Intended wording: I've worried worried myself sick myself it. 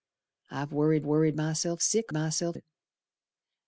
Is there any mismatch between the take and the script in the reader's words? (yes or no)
no